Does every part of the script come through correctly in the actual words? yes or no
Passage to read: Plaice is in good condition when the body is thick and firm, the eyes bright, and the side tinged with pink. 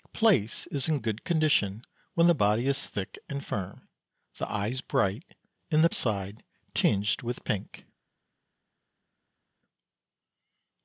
yes